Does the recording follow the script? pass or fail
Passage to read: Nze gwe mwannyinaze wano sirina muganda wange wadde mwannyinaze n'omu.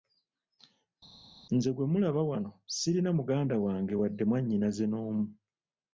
fail